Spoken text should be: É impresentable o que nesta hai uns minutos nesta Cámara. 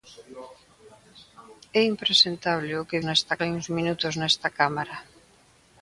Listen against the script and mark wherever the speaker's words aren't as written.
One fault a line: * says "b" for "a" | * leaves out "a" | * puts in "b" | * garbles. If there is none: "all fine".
all fine